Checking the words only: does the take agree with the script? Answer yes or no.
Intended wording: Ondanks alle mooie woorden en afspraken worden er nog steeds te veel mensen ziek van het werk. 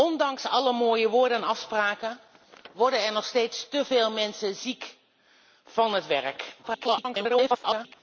no